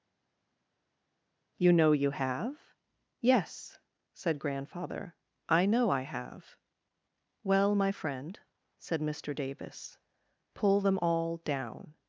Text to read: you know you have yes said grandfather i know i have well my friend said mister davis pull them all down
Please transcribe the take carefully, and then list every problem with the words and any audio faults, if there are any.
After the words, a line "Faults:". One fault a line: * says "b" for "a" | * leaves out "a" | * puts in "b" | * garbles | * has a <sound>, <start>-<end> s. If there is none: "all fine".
you know you have yes said grandfather i know i have well my friend said mister davis pull them all down
Faults:
all fine